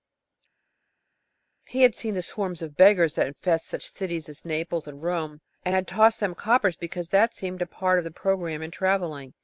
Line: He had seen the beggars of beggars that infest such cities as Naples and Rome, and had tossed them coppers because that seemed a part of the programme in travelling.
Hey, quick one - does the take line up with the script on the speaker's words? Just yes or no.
no